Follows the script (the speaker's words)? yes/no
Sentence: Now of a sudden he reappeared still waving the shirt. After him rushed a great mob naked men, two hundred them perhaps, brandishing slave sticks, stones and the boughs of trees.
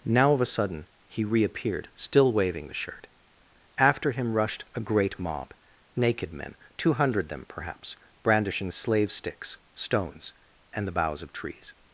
yes